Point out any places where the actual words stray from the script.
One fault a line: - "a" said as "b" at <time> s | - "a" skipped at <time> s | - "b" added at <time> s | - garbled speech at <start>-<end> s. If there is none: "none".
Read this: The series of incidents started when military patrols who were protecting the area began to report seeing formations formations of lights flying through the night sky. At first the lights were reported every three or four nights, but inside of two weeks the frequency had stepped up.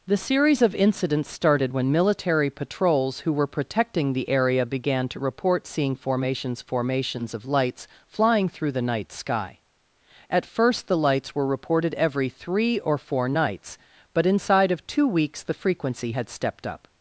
none